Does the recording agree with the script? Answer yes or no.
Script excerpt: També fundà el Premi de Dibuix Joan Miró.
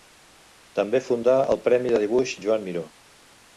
yes